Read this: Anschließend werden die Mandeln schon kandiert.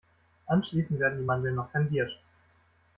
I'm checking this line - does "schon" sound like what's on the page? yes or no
no